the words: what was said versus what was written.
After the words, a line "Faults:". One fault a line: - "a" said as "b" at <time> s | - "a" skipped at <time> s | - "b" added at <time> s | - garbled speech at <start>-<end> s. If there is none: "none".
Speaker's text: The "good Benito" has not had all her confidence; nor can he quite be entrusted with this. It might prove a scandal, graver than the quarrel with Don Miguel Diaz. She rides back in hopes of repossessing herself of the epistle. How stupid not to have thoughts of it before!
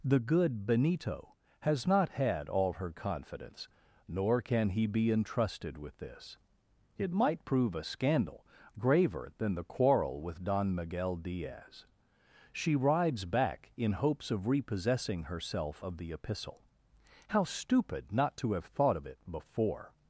The "good Benito" has not had all her confidence; nor can he be entrusted with this. It might prove a scandal, graver than the quarrel with Don Miguel Diaz. She rides back in hopes of repossessing herself of the epistle. How stupid not to have thought of it before!
Faults:
- "quite" skipped at 4.9 s
- "thoughts" said as "thought" at 18.7 s